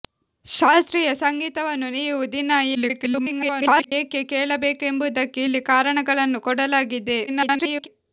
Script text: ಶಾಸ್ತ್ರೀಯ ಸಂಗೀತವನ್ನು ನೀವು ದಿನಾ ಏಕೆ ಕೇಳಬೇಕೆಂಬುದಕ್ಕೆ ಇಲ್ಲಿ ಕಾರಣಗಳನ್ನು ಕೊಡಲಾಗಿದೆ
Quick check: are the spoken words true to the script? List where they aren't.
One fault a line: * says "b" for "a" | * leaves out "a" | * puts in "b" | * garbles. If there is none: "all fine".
* garbles
* garbles